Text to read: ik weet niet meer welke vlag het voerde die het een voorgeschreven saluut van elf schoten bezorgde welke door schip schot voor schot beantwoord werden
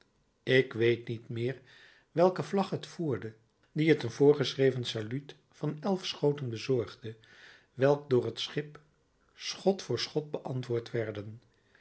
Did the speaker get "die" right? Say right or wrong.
right